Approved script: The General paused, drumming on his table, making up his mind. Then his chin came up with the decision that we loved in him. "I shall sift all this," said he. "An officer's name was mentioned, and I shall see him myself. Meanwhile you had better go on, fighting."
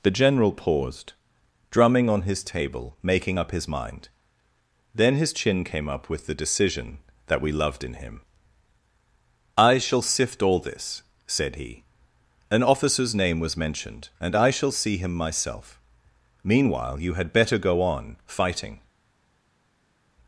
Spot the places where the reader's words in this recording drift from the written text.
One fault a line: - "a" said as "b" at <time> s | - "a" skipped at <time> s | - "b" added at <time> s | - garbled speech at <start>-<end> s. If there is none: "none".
none